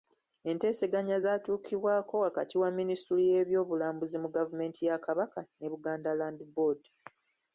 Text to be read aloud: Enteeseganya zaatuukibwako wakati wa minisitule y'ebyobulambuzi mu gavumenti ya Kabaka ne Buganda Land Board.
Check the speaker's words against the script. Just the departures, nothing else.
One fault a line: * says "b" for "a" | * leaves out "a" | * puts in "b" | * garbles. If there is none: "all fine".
all fine